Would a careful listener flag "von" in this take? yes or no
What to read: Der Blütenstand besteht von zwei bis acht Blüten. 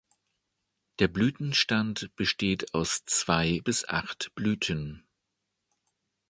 yes